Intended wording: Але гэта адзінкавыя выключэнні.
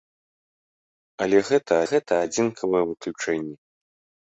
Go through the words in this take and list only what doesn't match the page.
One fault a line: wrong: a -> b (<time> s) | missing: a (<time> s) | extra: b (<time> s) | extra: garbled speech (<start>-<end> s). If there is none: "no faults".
extra: гэта (1.9 s)